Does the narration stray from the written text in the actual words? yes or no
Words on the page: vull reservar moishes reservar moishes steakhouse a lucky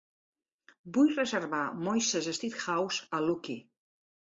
yes